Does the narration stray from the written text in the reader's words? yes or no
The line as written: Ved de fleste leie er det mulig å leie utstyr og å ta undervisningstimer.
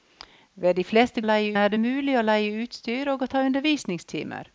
no